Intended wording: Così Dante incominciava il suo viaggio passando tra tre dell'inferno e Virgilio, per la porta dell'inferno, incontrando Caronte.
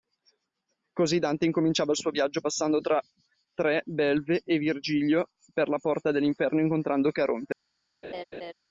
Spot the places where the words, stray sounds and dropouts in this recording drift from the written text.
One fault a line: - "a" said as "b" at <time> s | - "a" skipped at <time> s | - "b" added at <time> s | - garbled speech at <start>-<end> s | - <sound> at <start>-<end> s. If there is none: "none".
- "dell'inferno" said as "belve" at 3.9 s
- laugh at 8.0-8.5 s